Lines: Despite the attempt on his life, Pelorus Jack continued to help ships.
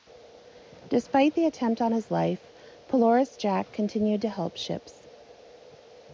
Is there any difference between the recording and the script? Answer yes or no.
no